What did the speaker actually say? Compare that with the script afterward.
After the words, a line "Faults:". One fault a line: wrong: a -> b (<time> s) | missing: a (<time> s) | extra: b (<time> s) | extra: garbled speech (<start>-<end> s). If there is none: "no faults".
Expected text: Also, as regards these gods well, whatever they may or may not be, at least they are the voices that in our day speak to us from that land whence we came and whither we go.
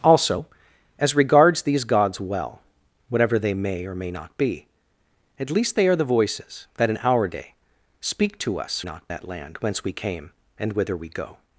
Also, as regards these gods well, whatever they may or may not be, at least they are the voices that in our day speak to us not that land whence we came and whither we go.
Faults:
wrong: from -> not (8.8 s)